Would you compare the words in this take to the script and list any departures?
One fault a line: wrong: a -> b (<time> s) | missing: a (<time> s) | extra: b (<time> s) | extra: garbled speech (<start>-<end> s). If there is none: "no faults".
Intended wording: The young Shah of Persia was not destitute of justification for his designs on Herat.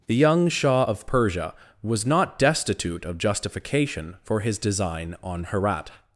wrong: designs -> design (4.6 s)